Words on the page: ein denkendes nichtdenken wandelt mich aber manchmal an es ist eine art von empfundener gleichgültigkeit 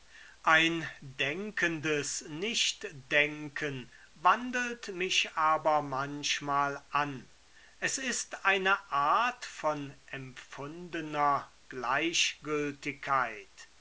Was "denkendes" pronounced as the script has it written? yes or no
yes